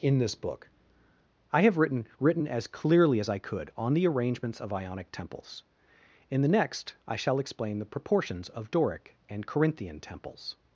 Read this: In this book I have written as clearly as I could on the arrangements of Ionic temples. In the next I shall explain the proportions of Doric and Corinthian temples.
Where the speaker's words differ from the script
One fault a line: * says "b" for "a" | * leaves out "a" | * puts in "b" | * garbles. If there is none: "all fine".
* puts in "written"